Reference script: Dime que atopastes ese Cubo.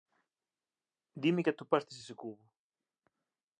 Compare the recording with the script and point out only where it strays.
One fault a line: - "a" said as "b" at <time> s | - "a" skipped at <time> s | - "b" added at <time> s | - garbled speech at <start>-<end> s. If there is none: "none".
none